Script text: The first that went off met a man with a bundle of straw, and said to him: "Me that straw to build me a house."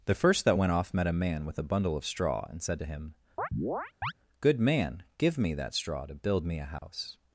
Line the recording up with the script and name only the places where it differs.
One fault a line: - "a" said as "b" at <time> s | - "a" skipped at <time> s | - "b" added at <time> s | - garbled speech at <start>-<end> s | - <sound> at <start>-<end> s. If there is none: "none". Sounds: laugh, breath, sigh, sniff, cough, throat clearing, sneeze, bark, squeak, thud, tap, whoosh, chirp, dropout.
- chirp at 3.4-4.1 s
- "Good man give" added at 4.4 s
- dropout at 6.8-6.8 s